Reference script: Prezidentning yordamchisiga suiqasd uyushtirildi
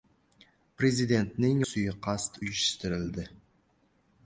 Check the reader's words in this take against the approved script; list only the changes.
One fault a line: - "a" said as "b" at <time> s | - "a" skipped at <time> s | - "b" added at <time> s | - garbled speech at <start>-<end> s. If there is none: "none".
- "yordamchisiga" skipped at 1.6 s